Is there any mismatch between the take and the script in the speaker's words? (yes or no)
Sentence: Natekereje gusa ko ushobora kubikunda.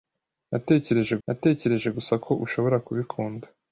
yes